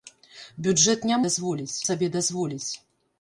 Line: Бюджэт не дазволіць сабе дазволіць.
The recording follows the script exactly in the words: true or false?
true